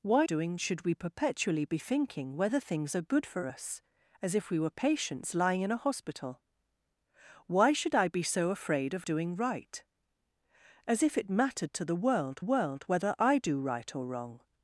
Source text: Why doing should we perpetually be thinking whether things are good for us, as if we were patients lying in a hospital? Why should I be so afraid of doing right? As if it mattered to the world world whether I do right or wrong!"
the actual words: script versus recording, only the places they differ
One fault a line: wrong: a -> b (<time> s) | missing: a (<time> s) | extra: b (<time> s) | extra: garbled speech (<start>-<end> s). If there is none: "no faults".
no faults